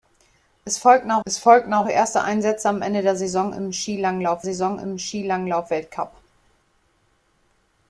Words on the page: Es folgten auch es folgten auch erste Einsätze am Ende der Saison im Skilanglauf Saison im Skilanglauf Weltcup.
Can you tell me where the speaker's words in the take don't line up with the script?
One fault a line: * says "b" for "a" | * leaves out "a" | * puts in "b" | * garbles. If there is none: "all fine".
all fine